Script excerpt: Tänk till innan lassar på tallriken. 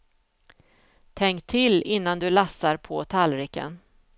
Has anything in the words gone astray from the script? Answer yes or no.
yes